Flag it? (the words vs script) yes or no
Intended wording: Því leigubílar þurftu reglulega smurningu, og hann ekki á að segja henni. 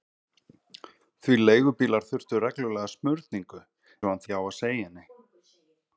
no